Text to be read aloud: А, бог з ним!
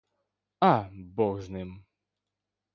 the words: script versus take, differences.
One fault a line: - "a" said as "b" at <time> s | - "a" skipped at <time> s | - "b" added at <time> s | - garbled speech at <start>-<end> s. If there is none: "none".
none